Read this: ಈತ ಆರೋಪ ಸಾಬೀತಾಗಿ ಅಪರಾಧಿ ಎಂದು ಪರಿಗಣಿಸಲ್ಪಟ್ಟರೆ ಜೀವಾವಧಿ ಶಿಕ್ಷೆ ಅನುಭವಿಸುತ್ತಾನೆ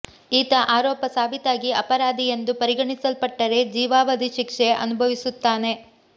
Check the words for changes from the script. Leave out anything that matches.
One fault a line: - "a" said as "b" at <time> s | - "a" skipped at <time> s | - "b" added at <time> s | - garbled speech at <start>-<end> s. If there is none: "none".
none